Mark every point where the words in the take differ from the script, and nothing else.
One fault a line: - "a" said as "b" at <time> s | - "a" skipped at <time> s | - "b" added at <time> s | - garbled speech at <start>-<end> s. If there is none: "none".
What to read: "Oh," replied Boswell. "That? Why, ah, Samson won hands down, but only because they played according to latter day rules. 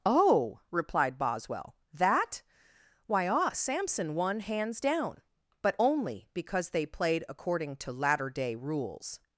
none